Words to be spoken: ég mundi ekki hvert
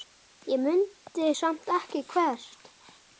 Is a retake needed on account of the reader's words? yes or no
yes